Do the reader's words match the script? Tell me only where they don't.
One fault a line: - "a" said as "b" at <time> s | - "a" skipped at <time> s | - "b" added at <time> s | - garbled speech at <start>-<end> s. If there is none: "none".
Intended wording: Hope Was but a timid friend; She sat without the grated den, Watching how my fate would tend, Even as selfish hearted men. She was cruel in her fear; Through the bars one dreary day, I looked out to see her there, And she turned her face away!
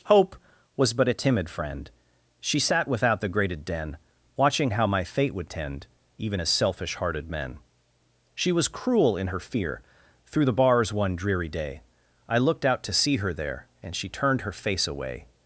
none